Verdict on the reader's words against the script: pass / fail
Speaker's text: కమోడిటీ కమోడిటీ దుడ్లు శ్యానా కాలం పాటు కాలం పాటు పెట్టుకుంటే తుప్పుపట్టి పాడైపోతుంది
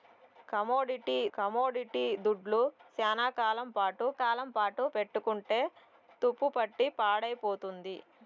pass